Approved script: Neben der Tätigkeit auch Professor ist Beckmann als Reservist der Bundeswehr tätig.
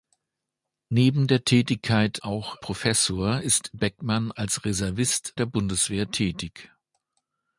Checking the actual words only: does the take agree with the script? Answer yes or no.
yes